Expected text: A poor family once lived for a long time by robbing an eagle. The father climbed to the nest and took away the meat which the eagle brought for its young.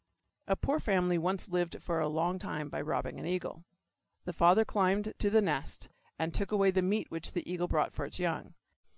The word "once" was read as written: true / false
true